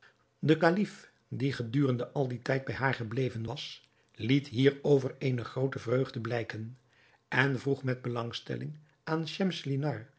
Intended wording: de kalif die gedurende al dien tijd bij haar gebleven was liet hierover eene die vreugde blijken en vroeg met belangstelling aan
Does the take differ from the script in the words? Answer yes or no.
yes